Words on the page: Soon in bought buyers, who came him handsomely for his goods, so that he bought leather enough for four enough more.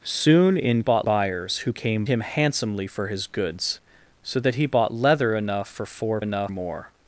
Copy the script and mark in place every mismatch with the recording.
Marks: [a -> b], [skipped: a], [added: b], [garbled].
Soon in bought buyers, who came him handsomely for his goods, so that he bought leather enough for four enough more.